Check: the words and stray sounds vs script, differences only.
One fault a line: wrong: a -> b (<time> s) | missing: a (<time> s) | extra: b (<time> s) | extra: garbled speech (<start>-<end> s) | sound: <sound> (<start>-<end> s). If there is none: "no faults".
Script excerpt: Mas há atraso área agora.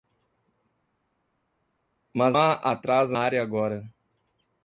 no faults